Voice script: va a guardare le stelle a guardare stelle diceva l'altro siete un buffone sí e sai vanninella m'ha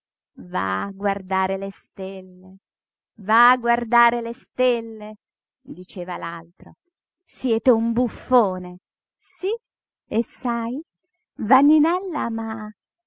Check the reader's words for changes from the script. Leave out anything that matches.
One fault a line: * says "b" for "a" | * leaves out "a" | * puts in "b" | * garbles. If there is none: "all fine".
* puts in "va"
* puts in "le"